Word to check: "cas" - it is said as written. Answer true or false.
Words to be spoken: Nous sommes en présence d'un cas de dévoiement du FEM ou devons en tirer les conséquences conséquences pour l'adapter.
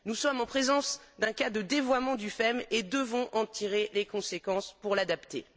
true